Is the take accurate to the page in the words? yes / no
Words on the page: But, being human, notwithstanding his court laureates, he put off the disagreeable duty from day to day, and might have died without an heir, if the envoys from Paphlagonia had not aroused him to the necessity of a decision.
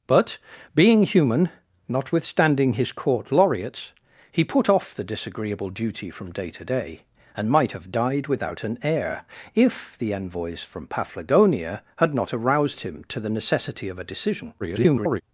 no